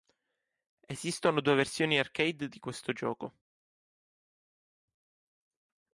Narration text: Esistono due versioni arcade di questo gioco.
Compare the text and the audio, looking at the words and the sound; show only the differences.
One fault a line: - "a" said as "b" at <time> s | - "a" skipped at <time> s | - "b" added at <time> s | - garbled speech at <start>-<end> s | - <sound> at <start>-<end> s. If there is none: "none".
none